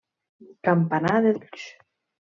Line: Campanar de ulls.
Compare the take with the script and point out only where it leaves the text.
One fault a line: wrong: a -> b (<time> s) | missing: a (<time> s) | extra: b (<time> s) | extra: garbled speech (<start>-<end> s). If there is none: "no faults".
no faults